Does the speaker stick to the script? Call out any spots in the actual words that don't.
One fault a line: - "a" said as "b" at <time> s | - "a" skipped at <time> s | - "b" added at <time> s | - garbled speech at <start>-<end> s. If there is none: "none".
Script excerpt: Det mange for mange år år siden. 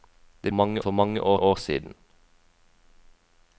none